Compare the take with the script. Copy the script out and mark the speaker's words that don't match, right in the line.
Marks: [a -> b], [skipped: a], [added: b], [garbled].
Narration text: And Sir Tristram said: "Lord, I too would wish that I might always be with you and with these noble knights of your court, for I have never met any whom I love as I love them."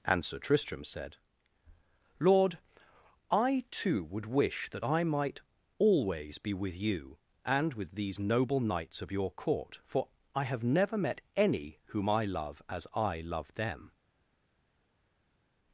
And Sir Tristram said: "Lord, I too would wish that I might always be with you and with these noble knights of your court, for I have never met any whom I love as I love them."